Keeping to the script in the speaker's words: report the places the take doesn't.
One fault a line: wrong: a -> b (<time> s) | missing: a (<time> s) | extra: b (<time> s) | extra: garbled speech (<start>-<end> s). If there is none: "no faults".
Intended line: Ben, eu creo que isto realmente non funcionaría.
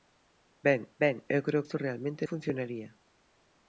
extra: ben (1.0 s)
missing: que (1.7 s)
missing: non (2.2 s)